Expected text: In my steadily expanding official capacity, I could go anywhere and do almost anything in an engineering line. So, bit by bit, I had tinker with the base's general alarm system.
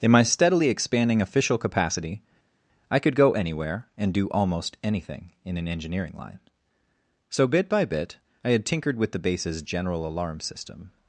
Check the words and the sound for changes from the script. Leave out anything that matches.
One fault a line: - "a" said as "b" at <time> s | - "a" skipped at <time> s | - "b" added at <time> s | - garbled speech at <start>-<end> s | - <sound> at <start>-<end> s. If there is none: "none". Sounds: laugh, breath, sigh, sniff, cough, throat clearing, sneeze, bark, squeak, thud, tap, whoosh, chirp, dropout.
- "tinker" said as "tinkered" at 8.6 s